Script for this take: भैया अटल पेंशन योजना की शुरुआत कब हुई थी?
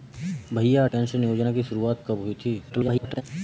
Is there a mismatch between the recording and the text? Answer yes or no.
yes